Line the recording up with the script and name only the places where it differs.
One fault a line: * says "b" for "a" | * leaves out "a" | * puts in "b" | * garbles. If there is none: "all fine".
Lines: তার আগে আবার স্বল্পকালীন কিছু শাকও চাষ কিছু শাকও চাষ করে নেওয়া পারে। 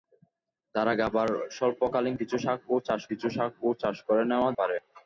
all fine